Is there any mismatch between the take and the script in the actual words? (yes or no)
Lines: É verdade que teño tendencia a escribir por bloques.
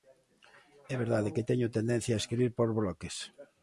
no